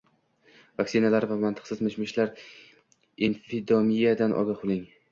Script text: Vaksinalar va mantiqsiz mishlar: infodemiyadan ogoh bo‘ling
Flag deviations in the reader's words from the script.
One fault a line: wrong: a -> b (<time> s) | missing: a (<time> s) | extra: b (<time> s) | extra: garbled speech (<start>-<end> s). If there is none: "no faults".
extra: mish (1.9 s)